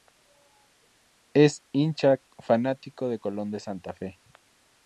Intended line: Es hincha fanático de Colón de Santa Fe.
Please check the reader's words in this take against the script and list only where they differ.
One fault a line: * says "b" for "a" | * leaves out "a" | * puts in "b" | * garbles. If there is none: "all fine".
all fine